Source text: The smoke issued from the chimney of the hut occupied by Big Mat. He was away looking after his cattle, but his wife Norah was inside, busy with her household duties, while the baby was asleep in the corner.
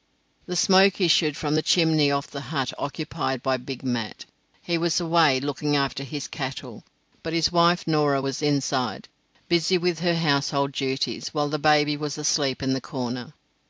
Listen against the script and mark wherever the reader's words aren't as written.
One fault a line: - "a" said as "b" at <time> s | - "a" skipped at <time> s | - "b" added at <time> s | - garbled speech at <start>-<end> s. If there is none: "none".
none